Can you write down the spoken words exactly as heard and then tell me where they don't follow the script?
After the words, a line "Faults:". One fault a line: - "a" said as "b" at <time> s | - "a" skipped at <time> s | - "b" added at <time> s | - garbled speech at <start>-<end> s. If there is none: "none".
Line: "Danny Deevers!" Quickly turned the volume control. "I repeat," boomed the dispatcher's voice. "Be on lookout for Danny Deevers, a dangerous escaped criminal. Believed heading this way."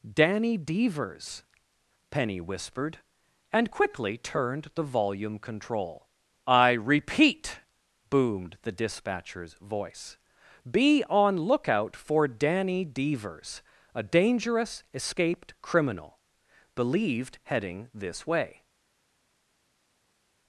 "Danny Deevers!" Penny whispered, and quickly turned the volume control. "I repeat," boomed the dispatcher's voice. "Be on lookout for Danny Deevers, a dangerous escaped criminal. Believed heading this way."
Faults:
- "Penny whispered and" added at 2.1 s